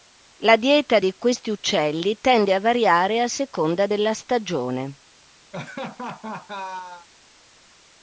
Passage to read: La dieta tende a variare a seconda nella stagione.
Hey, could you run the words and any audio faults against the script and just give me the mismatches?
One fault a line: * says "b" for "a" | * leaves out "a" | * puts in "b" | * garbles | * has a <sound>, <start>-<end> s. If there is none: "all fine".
* puts in "di questi uccelli"
* says "della" for "nella"
* has a laugh, 5.5-7.1 s